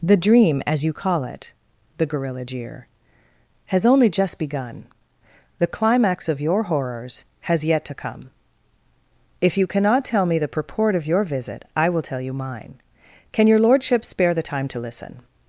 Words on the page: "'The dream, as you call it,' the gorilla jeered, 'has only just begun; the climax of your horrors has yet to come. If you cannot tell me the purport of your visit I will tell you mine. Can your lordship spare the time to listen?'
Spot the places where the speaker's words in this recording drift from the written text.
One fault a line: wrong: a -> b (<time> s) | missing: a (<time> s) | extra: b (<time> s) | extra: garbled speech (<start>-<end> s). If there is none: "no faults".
wrong: jeered -> jeer (2.4 s)